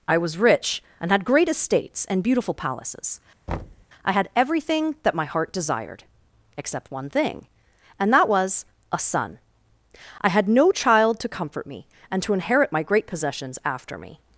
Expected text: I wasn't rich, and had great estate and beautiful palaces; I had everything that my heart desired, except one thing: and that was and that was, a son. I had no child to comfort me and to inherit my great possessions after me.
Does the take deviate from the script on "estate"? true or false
true